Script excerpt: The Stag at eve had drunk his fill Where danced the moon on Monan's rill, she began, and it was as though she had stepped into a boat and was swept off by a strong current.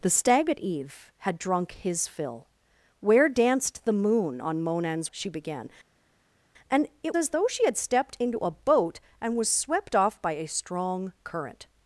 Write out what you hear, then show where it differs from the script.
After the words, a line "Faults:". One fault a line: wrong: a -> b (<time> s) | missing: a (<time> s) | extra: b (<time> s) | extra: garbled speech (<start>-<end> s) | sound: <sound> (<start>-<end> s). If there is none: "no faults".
The Stag at eve had drunk his fill Where danced the moon on Monan's she began, and it as though she had stepped into a boat and was swept off by a strong current.
Faults:
missing: rill (5.1 s)
missing: was (7.2 s)